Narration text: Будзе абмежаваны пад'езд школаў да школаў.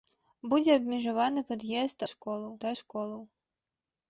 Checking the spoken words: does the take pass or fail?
pass